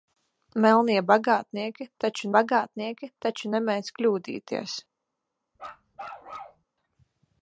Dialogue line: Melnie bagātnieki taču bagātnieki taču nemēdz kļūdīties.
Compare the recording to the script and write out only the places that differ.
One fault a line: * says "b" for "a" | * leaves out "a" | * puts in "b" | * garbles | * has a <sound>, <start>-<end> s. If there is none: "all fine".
* has a bark, 5.6-6.6 s